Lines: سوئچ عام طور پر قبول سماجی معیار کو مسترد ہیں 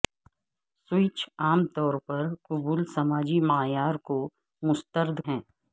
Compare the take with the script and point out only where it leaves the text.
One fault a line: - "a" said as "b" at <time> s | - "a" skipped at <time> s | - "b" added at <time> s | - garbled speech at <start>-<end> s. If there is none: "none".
none